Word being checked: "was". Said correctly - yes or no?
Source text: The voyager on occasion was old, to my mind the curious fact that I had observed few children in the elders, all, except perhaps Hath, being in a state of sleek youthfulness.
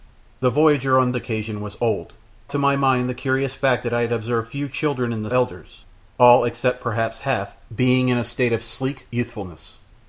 yes